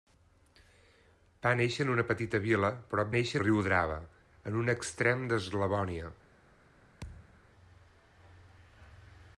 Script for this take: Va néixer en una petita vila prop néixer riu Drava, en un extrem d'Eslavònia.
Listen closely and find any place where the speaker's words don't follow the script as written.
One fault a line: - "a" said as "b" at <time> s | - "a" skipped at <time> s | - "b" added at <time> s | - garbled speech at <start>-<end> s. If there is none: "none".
none